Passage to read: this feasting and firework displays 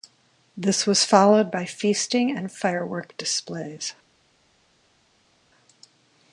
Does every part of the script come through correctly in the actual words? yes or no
no